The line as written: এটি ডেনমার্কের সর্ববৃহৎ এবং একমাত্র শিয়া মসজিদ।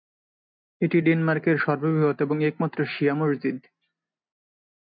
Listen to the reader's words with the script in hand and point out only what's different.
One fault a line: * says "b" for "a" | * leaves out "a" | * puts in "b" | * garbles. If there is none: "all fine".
all fine